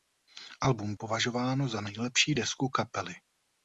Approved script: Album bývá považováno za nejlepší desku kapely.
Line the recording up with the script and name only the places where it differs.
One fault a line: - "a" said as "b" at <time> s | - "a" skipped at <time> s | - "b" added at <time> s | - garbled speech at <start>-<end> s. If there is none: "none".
- "bývá" skipped at 0.9 s